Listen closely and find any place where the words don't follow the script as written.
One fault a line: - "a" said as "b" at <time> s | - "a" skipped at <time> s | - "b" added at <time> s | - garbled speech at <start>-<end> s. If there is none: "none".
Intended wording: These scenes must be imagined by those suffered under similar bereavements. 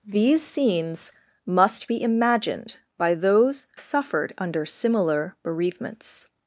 none